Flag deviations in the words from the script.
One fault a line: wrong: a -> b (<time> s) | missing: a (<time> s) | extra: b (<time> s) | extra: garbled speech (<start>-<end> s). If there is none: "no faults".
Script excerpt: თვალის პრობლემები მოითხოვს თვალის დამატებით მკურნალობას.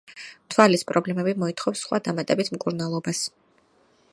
wrong: თვალის -> სხვა (1.9 s)